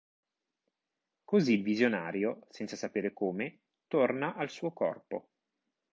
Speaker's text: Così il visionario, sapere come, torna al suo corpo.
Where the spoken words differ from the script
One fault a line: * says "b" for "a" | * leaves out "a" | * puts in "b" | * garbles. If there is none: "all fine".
* puts in "senza"